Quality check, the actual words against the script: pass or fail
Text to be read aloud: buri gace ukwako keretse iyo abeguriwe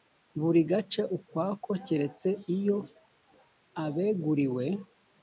pass